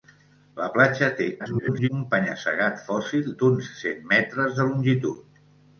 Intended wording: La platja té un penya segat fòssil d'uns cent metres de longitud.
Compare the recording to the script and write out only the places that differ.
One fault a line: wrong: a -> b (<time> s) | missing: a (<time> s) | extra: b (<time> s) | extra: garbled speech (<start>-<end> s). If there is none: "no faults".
extra: garbled speech (1.4-1.9 s)